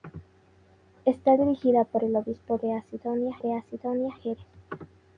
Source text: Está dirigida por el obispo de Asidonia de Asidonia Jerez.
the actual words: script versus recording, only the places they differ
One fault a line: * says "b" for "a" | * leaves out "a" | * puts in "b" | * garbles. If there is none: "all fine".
all fine